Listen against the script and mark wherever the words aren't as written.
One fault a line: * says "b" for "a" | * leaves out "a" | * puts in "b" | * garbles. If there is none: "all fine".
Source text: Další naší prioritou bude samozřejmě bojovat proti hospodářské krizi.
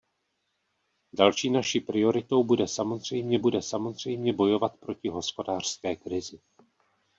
* puts in "bude samozřejmě"